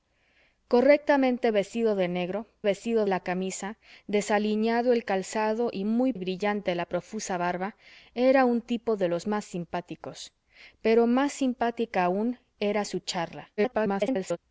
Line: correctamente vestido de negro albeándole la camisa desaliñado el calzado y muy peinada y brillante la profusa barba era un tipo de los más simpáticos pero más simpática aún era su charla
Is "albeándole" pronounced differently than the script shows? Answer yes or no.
yes